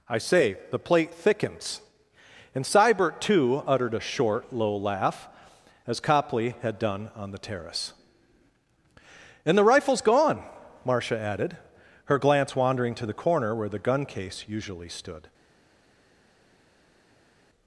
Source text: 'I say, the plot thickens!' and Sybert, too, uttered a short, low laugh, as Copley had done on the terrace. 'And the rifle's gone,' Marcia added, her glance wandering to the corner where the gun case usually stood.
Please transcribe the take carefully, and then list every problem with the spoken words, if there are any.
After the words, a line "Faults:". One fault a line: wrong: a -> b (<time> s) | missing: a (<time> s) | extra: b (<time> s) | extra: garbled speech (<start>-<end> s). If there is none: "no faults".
'I say, the plate thickens!' and Sybert, too, uttered a short, low laugh, as Copley had done on the terrace. 'And the rifle's gone,' Marcia added, her glance wandering to the corner where the gun case usually stood.
Faults:
wrong: plot -> plate (0.8 s)